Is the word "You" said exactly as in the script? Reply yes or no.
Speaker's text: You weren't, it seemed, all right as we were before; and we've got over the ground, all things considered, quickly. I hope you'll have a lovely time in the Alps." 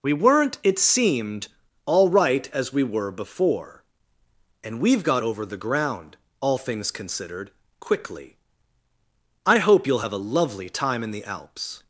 no